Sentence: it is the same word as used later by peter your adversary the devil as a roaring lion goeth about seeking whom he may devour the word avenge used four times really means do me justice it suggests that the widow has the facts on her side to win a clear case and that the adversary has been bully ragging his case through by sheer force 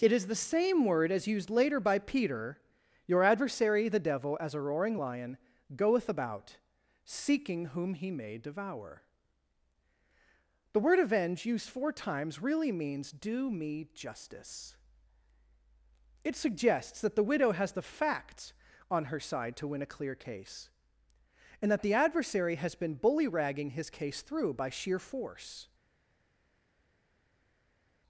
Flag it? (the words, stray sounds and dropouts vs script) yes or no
no